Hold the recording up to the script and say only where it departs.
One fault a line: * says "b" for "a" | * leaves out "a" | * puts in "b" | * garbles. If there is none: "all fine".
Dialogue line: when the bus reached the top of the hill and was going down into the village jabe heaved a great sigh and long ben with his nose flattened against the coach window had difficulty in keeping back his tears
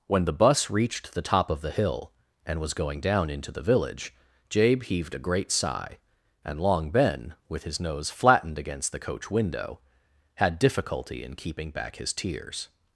all fine